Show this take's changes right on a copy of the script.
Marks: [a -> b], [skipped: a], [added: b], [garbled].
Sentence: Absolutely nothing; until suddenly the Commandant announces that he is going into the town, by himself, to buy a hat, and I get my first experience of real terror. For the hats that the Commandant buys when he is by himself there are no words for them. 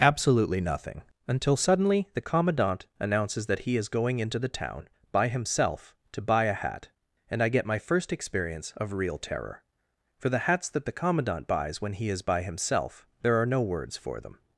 Absolutely nothing; until suddenly the Commandant announces that he is going into the town, by himself, to buy a hat, and I get my first experience of real terror. For the hats that the Commandant buys when he is by himself there are no words for them.